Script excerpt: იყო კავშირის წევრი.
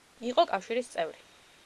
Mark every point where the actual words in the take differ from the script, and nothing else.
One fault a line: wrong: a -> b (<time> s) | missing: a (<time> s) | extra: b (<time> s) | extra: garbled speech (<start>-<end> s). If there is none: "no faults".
no faults